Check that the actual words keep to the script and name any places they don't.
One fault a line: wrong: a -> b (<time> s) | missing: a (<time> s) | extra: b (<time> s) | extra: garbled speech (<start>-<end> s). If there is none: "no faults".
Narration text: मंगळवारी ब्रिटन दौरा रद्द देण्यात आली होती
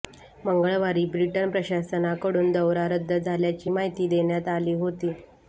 extra: प्रशासनाकडून (1.5 s)
extra: झाल्याची माहिती (3.1 s)